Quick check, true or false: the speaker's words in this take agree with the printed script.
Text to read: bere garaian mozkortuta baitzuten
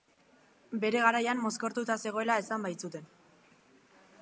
false